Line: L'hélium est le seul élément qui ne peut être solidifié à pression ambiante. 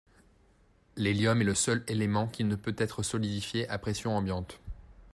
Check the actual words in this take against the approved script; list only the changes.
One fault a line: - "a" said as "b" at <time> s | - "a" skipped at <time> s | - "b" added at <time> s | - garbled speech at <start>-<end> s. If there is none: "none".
none